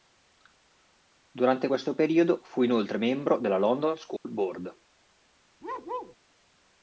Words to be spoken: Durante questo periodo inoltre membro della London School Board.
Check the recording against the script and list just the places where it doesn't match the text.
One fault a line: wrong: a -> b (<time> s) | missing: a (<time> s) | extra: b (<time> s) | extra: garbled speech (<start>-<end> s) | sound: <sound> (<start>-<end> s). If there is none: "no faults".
extra: fu (2.4 s)
sound: dropout (4.2-4.3 s)
sound: bark (5.6-6.2 s)